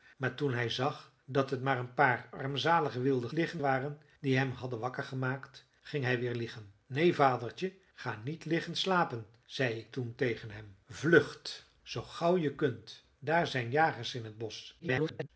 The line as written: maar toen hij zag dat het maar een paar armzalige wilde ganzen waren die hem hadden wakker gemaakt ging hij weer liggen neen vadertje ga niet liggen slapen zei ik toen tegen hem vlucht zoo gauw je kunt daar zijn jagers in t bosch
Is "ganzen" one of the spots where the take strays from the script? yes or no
yes